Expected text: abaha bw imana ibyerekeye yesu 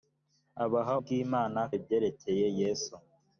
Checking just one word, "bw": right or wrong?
right